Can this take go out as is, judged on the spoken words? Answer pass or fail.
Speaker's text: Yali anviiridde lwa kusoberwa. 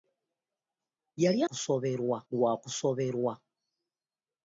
fail